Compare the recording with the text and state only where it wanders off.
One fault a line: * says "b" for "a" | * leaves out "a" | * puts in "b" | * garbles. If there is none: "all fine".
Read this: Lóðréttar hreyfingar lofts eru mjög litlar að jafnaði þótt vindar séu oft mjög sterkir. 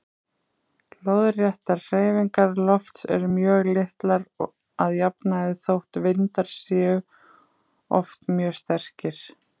all fine